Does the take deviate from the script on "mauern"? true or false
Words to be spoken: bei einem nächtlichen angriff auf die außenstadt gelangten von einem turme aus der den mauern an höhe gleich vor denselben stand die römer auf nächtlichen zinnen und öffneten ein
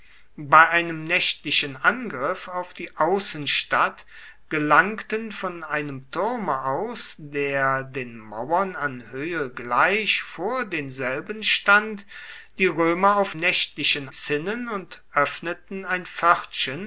false